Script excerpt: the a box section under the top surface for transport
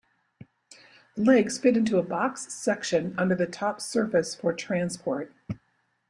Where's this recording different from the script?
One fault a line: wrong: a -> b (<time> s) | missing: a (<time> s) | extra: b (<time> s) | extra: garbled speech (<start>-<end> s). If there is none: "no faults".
extra: legs fit into (1.2 s)